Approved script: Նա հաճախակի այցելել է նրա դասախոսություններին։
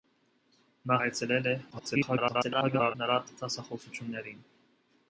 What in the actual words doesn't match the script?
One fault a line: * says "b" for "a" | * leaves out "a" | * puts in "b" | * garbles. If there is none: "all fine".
* leaves out "հաճախակի"
* garbles